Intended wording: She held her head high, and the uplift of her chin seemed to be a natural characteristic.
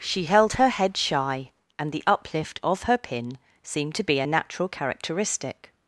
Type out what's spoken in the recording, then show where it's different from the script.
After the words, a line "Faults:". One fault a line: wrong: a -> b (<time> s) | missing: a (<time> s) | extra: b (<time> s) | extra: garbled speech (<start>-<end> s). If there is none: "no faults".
She held her head shy, and the uplift of her pin seemed to be a natural characteristic.
Faults:
wrong: high -> shy (1.0 s)
wrong: chin -> pin (3.0 s)